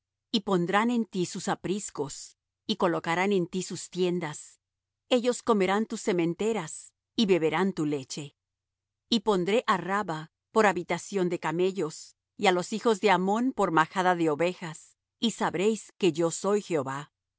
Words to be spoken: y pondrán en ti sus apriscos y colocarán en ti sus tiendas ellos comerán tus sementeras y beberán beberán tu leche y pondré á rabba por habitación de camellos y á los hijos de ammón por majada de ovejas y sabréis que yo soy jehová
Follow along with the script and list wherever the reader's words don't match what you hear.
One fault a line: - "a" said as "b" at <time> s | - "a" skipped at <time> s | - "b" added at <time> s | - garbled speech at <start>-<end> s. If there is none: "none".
- "beberán" skipped at 7.7 s